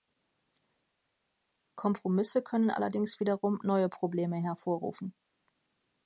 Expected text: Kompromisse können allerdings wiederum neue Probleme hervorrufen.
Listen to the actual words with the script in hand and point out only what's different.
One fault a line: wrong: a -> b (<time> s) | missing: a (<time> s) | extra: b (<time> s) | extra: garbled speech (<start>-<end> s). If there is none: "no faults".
no faults